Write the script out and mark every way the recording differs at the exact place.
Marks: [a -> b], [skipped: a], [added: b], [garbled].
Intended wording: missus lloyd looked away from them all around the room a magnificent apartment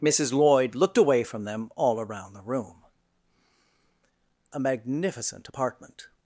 missus lloyd looked away from them all around the room a magnificent apartment